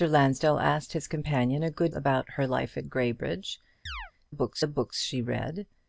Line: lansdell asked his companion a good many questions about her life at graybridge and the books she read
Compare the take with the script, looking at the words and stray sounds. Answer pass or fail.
fail